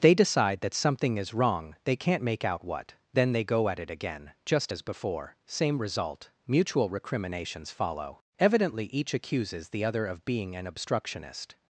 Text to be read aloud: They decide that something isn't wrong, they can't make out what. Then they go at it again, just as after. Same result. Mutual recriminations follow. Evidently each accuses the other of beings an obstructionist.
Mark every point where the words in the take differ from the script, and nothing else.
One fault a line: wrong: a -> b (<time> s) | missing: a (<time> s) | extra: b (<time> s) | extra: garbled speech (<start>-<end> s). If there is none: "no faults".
wrong: isn't -> is (1.2 s)
wrong: after -> before (4.8 s)
wrong: beings -> being (10.2 s)